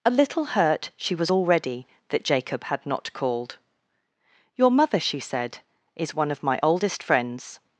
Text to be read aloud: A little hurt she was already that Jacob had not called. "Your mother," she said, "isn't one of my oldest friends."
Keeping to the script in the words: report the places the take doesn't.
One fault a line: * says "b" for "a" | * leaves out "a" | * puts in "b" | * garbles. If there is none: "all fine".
* says "is" for "isn't"